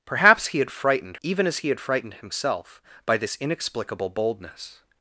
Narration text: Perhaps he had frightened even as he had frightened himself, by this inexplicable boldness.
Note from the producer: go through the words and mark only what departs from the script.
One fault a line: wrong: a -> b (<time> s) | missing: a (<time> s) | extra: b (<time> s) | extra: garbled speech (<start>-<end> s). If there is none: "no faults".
no faults